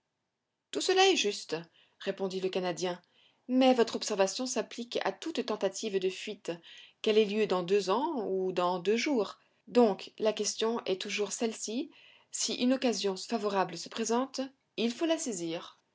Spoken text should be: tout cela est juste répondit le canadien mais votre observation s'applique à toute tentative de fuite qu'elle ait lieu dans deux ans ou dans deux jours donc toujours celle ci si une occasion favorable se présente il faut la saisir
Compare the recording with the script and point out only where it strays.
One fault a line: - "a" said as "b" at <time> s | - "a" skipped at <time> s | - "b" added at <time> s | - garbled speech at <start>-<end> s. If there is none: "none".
- "la question est" added at 10.2 s